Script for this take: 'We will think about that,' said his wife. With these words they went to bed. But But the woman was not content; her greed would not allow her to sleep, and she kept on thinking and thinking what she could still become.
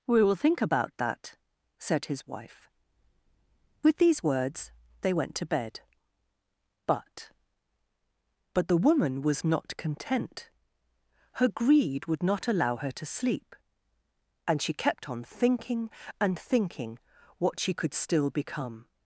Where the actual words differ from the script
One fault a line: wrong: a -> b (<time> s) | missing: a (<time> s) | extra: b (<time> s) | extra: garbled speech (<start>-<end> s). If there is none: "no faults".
no faults